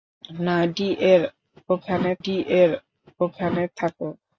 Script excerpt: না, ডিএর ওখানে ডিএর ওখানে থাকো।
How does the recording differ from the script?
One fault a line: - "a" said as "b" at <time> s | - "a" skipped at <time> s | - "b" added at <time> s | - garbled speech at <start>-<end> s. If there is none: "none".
none